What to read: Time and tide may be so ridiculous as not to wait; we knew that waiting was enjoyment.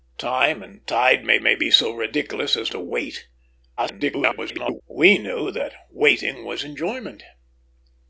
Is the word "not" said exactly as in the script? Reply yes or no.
no